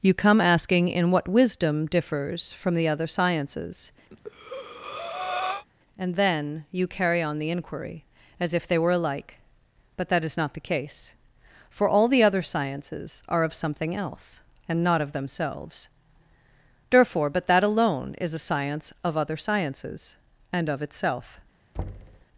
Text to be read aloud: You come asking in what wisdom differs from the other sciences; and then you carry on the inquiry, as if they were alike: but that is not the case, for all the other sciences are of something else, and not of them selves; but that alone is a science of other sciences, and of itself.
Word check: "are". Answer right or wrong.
right